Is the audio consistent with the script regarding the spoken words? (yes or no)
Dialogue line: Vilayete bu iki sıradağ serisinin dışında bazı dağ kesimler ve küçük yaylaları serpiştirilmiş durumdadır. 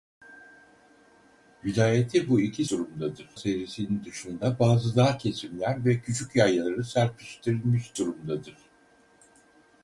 no